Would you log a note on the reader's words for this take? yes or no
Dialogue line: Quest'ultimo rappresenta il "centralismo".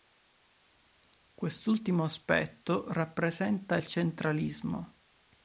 yes